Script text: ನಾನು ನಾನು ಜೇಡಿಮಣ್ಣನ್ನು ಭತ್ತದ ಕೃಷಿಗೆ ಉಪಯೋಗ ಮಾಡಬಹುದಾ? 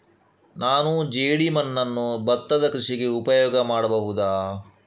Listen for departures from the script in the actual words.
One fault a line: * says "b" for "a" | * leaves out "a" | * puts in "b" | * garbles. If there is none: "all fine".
* leaves out "ನಾನು"